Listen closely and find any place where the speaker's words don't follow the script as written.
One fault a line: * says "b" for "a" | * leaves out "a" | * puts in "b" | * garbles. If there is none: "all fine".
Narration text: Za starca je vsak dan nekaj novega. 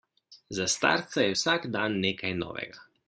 all fine